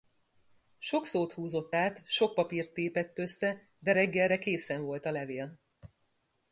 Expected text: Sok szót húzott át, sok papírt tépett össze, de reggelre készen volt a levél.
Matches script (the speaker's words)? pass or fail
pass